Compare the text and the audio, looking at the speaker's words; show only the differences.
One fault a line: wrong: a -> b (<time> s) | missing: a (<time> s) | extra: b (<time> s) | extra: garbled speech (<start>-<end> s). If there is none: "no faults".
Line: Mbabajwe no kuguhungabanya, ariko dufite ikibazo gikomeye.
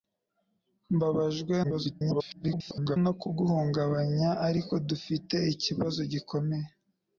extra: garbled speech (1.6-3.0 s)